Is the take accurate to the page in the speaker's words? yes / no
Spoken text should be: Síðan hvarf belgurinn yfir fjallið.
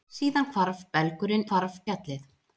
no